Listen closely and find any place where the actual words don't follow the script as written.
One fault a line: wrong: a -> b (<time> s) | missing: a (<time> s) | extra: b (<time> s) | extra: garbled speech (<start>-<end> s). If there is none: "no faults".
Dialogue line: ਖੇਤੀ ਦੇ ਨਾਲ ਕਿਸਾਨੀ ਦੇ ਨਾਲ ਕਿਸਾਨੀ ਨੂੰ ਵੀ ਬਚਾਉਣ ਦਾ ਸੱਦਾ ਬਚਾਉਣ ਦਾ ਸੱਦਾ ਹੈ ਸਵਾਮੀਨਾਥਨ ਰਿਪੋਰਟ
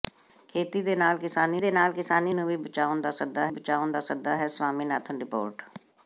no faults